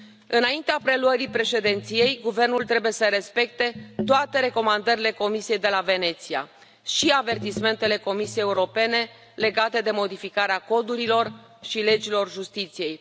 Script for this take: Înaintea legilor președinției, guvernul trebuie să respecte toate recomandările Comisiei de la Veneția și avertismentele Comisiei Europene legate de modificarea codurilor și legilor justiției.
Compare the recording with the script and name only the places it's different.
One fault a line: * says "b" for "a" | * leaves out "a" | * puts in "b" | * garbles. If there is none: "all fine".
* says "preluării" for "legilor"